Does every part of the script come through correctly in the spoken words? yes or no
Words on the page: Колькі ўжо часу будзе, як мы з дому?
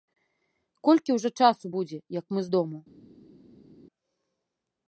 yes